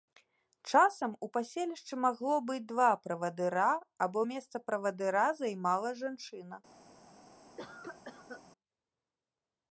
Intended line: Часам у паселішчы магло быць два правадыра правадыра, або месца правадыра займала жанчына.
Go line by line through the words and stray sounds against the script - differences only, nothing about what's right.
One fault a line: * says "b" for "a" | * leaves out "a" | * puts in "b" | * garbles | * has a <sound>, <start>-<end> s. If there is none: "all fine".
* leaves out "правадыра"
* has a cough, 7.6-8.4 s